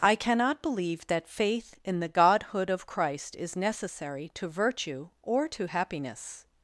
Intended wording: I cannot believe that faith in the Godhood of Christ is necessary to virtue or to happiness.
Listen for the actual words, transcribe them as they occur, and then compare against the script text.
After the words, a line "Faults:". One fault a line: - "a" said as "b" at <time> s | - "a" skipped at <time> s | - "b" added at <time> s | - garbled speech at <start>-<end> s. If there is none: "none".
I cannot believe that faith in the Godhood of Christ is necessary to virtue or to happiness.
Faults:
none